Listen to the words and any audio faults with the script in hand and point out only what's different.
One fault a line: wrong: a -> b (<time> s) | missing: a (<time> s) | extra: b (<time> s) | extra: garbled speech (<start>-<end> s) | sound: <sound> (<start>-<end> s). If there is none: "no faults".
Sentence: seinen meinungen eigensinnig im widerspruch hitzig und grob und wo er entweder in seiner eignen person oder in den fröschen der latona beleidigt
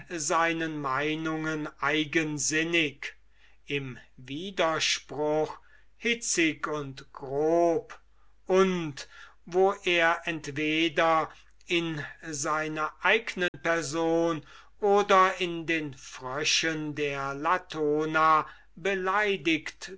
sound: dropout (13.5-13.5 s)